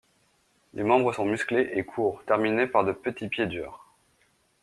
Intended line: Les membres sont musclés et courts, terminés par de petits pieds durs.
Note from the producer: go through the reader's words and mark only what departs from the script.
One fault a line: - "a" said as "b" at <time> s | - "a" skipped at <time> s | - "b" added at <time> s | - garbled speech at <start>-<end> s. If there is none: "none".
none